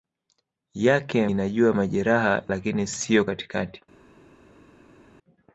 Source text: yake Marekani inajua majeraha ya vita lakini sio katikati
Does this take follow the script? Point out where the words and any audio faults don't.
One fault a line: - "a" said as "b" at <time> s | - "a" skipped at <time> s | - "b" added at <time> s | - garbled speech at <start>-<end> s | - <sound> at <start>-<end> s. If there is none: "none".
- "Marekani" skipped at 1.3 s
- "ya vita" skipped at 2.4 s